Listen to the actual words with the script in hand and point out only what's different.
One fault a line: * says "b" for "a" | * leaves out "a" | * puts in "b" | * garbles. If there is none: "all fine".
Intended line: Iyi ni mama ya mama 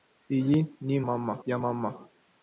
all fine